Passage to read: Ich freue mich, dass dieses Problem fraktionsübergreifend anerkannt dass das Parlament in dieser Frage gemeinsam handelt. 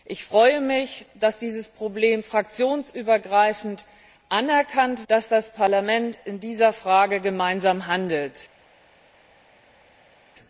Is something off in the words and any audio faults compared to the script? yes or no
no